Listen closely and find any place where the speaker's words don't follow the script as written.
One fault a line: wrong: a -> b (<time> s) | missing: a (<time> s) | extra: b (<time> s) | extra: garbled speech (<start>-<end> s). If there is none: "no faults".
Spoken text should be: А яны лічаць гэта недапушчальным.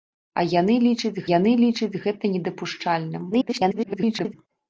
extra: яны лічаць (1.3 s)
extra: garbled speech (3.3-4.3 s)